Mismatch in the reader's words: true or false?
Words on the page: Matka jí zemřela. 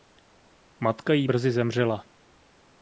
true